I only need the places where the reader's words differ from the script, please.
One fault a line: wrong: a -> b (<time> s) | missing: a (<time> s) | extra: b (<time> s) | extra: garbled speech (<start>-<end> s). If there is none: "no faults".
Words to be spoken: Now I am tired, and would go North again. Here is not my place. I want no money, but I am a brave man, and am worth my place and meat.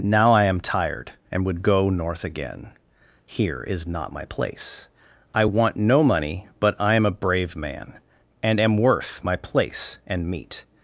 no faults